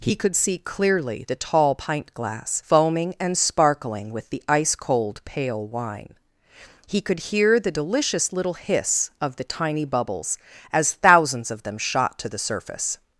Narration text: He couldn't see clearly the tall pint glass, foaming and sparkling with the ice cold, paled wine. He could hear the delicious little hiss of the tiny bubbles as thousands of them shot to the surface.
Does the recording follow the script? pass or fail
fail